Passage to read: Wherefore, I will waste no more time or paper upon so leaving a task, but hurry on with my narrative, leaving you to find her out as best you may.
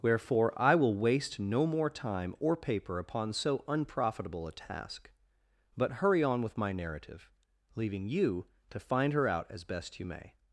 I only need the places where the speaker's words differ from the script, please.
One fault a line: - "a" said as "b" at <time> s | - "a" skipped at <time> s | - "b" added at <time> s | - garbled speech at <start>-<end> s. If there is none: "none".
- "leaving" said as "unprofitable" at 3.7 s